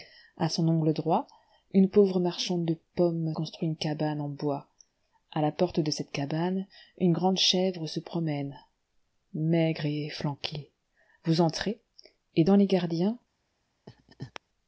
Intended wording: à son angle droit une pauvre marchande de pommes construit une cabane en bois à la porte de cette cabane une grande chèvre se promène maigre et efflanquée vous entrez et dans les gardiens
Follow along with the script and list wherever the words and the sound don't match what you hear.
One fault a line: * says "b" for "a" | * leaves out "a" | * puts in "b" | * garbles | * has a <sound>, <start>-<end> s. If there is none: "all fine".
* has a laugh, 13.9-14.4 s